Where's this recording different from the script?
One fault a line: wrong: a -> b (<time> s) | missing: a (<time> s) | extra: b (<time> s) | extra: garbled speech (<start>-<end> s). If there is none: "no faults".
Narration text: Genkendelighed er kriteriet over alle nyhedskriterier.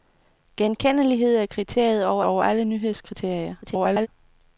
extra: over (2.2 s)
extra: garbled speech (3.6-4.1 s)